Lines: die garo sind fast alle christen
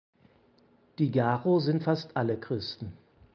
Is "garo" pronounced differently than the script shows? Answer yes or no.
no